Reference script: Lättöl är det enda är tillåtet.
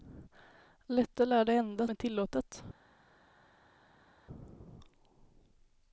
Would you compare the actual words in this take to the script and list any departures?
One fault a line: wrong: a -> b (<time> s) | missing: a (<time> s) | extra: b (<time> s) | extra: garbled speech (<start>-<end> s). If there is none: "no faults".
no faults